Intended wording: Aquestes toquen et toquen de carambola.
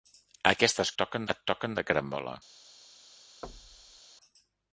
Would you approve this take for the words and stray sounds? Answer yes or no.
no